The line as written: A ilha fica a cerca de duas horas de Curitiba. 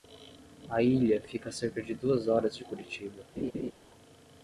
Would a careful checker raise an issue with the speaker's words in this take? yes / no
no